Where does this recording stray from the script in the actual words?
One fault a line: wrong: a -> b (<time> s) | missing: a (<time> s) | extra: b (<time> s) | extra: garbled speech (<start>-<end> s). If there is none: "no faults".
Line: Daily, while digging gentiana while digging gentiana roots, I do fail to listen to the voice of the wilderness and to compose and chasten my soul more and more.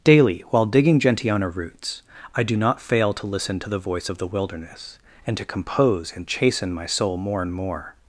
missing: while digging gentiana (1.6 s)
extra: not (2.6 s)